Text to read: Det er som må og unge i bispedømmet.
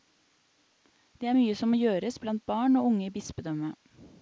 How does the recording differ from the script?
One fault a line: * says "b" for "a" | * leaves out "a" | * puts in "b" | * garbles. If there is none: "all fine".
* puts in "mye"
* puts in "gjøres blant barn"